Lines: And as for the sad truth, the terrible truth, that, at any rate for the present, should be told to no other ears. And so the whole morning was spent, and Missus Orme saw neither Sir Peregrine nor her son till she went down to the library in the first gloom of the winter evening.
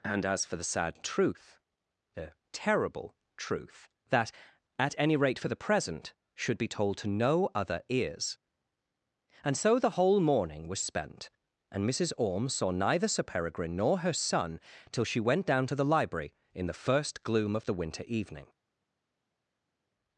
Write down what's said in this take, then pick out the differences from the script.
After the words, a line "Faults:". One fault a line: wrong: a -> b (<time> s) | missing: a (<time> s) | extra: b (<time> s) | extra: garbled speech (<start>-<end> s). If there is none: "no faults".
And as for the sad truth, the terrible truth, that, at any rate for the present, should be told to no other ears. And so the whole morning was spent, and Missus Orme saw neither Sir Peregrine nor her son till she went down to the library in the first gloom of the winter evening.
Faults:
no faults